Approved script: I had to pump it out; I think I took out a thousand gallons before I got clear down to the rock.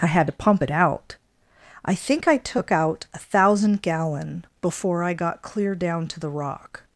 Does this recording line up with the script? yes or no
no